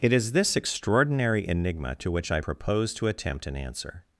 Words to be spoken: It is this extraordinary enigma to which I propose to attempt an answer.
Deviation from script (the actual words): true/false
false